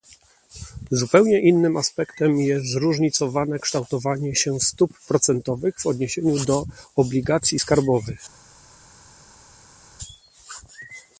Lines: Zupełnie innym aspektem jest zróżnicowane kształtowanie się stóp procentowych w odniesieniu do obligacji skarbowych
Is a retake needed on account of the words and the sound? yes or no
no